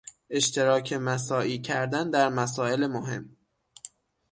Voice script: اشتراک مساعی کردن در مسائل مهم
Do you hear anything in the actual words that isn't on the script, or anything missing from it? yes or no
no